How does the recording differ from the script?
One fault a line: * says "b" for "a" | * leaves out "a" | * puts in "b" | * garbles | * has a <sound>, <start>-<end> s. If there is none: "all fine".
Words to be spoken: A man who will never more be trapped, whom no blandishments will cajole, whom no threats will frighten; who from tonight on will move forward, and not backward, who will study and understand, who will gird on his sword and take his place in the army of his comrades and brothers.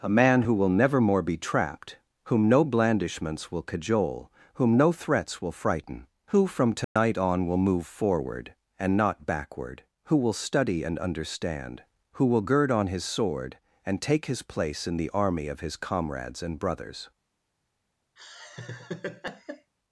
* has a dropout, 6.8-7.0 s
* has a laugh, 18.2-19.7 s